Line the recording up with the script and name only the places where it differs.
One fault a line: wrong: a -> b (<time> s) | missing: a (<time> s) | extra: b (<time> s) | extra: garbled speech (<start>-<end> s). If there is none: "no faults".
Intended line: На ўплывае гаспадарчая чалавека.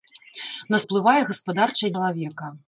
no faults